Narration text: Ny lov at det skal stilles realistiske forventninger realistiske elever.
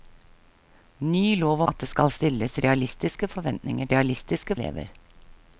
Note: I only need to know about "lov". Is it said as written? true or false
true